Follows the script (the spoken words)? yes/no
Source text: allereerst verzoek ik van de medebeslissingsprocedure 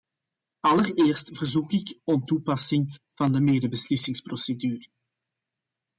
no